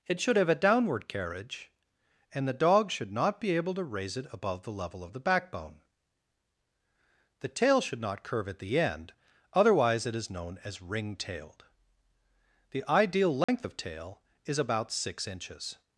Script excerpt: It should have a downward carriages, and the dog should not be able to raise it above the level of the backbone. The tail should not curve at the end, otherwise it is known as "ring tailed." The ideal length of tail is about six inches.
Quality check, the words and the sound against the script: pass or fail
fail